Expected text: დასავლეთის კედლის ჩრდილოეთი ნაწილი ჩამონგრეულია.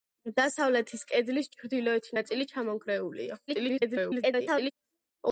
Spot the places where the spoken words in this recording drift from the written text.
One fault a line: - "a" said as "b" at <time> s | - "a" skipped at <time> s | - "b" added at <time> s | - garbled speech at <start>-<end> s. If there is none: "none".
- garbled speech at 3.5-4.7 s